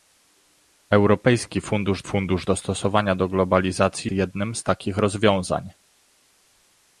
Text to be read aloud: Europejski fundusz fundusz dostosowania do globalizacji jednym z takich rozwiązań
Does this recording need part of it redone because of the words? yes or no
no